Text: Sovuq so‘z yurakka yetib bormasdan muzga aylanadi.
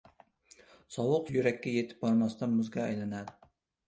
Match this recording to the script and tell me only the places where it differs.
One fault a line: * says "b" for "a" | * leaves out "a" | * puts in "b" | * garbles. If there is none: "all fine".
* leaves out "so‘z"